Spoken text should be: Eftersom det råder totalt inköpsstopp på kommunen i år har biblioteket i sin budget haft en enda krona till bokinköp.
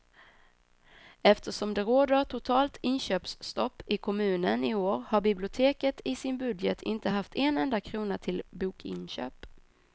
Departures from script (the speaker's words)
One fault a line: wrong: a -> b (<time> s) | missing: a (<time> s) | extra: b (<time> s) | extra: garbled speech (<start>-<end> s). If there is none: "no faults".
wrong: på -> i (3.9 s)
extra: inte (6.8 s)